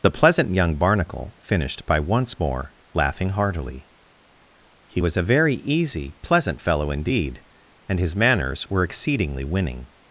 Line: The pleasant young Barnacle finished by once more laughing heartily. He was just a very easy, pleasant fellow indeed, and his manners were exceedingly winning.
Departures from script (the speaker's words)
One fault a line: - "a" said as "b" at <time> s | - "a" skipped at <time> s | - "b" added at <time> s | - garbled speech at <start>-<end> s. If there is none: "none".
- "just" skipped at 5.2 s